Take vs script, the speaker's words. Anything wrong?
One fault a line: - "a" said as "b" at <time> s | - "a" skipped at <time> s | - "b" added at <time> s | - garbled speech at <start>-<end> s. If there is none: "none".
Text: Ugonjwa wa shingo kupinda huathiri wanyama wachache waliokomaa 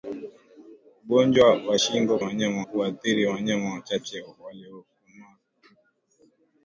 - "kupinda" said as "wanyama" at 2.2 s